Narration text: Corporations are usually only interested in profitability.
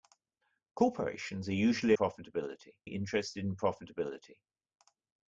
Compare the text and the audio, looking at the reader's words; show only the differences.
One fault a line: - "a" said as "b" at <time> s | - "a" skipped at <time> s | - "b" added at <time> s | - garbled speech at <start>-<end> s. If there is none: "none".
- "only" said as "profitability" at 1.9 s